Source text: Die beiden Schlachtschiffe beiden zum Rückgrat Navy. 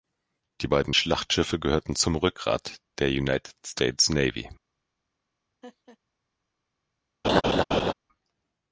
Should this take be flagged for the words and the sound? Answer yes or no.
yes